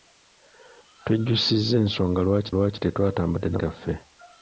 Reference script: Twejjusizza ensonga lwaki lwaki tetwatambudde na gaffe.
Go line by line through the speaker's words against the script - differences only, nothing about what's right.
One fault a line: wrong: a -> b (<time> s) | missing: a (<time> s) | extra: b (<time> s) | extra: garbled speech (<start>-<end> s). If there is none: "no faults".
no faults